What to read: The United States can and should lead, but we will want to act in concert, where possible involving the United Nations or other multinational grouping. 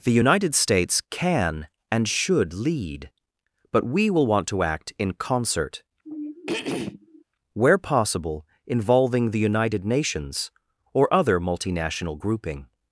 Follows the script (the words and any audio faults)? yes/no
no